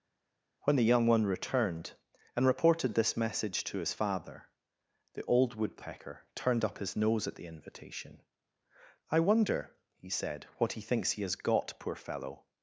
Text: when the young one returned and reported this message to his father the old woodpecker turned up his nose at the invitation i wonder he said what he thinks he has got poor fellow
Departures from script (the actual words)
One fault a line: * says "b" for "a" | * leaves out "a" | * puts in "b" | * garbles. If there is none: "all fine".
all fine